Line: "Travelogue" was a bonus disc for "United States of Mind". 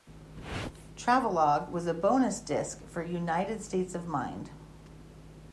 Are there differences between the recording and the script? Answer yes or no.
no